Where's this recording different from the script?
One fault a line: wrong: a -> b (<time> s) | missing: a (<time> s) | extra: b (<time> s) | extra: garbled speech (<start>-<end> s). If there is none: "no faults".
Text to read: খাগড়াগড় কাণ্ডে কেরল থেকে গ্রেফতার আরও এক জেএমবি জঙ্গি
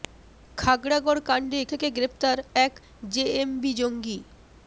missing: কেরল (1.6 s)
missing: আরও (2.4 s)